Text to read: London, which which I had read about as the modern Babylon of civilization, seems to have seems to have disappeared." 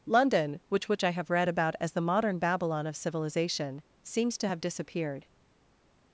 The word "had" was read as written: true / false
false